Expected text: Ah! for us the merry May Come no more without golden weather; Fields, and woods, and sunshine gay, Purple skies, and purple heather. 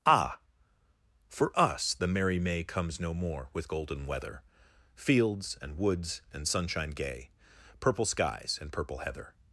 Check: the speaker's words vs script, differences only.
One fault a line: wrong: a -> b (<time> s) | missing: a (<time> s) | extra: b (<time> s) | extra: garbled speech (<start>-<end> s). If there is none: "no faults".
wrong: Come -> Comes (2.6 s)
wrong: without -> with (3.5 s)